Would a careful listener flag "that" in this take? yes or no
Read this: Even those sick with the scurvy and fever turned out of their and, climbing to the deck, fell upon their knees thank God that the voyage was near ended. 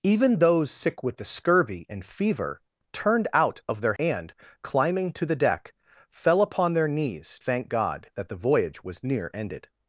no